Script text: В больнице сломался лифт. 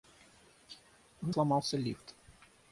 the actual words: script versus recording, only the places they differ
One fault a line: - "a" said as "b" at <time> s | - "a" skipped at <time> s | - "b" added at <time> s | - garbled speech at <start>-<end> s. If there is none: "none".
- "больнице" skipped at 1.3 s